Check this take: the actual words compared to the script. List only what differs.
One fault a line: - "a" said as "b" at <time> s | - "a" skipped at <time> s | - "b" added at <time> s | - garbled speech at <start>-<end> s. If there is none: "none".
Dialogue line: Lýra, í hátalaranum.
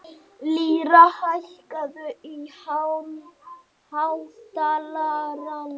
- "hækkaðu" added at 1.2 s